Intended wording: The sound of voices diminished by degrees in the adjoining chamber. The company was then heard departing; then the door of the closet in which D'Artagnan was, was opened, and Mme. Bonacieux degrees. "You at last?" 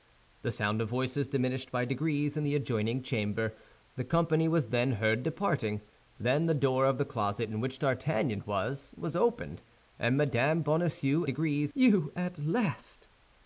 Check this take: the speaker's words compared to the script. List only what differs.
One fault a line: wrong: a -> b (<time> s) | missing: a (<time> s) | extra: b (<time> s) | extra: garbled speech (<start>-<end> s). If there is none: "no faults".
no faults